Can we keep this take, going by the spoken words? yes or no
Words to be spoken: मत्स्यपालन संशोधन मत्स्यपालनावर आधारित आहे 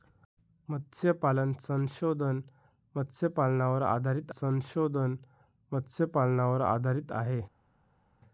no